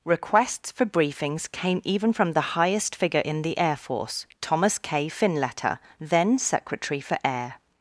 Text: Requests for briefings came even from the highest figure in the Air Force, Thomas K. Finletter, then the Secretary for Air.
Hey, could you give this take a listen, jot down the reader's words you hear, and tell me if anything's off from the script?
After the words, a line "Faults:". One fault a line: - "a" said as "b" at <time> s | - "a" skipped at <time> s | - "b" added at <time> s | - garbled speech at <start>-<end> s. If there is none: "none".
Requests for briefings came even from the highest figure in the Air Force, Thomas K. Finletter, then Secretary for Air.
Faults:
- "the" skipped at 6.4 s